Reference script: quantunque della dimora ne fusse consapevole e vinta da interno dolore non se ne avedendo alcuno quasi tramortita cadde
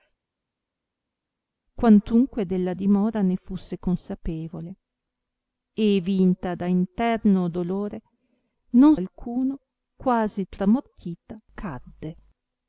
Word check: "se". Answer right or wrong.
wrong